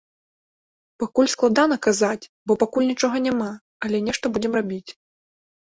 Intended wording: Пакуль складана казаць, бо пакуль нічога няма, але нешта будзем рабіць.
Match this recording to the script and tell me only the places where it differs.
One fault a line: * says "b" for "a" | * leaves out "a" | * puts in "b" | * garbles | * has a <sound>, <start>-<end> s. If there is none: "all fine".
all fine